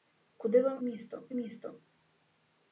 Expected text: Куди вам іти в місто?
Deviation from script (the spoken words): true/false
true